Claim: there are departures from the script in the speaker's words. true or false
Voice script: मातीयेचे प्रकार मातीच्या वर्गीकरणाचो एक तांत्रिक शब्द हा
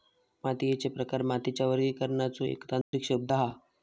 false